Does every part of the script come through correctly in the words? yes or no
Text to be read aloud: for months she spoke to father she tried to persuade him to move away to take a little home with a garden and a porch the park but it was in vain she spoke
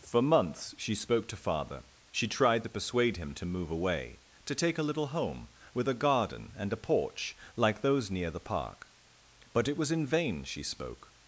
no